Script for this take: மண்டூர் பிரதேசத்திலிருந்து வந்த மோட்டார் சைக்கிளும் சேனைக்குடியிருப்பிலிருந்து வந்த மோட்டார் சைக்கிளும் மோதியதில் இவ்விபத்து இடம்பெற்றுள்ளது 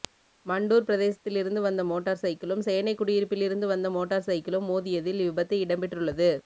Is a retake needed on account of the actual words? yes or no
no